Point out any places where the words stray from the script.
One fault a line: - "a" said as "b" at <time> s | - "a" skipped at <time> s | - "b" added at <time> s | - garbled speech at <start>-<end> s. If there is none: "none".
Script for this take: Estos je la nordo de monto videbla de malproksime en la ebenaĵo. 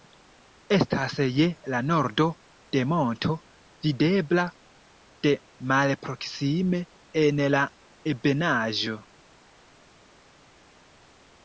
- "Estos" said as "Estas" at 0.8 s